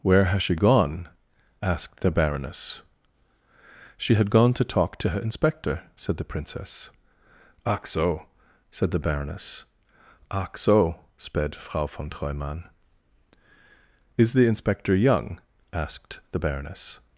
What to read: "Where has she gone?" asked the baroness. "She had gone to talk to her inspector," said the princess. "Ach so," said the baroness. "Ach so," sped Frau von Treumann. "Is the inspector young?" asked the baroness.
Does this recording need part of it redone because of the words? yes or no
no